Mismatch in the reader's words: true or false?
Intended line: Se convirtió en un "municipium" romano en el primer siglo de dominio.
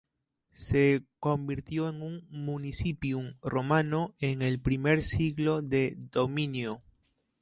false